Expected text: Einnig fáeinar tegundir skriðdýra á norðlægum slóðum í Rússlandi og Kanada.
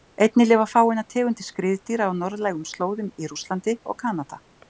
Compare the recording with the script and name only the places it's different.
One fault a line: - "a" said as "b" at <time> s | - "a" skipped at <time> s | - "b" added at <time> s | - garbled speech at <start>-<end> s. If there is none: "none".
- "lifa" added at 0.5 s